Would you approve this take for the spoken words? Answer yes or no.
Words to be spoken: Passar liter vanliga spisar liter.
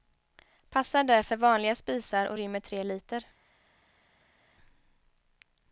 no